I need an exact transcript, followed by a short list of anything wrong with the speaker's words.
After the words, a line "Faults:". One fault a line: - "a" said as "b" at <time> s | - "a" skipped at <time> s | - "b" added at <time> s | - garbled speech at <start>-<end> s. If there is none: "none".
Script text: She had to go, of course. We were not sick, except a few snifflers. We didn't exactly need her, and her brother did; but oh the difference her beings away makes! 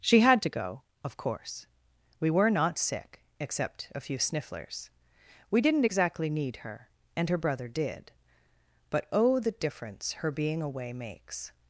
She had to go, of course. We were not sick, except a few snifflers. We didn't exactly need her, and her brother did; but oh the difference her being away makes!
Faults:
- "beings" said as "being" at 10.3 s